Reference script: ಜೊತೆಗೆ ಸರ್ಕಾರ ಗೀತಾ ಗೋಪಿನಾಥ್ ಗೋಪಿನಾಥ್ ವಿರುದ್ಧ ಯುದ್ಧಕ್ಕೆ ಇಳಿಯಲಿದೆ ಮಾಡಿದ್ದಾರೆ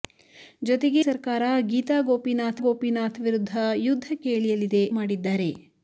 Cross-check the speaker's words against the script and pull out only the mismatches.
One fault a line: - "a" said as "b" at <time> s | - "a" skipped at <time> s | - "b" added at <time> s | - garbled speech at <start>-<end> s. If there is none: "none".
none